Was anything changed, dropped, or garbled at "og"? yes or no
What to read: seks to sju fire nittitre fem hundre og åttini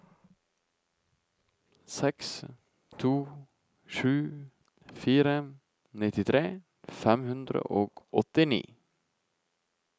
no